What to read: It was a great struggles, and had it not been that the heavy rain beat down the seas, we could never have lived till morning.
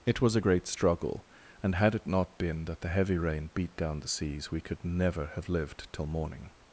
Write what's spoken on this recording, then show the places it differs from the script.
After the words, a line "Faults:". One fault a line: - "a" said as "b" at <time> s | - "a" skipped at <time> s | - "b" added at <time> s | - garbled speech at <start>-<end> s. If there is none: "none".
It was a great struggle, and had it not been that the heavy rain beat down the seas, we could never have lived till morning.
Faults:
- "struggles" said as "struggle" at 0.7 s